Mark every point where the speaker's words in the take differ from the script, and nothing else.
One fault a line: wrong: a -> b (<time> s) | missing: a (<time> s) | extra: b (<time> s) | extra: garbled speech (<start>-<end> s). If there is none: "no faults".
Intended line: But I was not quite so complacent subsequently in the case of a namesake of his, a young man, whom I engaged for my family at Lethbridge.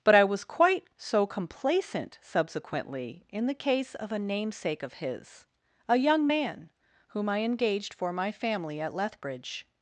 missing: not (0.4 s)